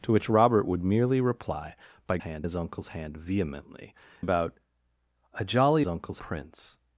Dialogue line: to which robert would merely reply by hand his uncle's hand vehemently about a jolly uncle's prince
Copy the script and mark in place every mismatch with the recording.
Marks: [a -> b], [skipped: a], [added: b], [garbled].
to which robert would merely reply by hand his uncle's hand vehemently about a jolly uncle's prince